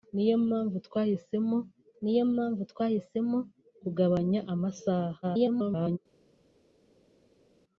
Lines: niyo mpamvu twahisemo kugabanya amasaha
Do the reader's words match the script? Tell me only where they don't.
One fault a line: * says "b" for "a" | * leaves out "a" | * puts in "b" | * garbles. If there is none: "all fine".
* puts in "niyo mpamvu twahisemo"
* garbles